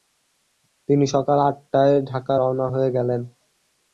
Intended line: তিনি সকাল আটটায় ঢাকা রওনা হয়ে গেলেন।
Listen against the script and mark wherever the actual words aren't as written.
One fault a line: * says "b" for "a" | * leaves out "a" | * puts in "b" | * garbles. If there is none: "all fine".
all fine